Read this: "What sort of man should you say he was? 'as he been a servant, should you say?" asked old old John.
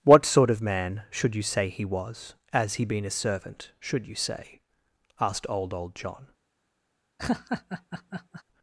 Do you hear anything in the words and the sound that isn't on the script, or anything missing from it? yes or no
yes